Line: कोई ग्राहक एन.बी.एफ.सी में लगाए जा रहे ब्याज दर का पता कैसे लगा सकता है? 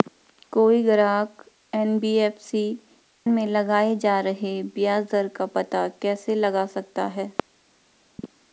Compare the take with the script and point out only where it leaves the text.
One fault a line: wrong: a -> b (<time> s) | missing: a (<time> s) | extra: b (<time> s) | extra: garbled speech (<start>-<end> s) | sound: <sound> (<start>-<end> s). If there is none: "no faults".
no faults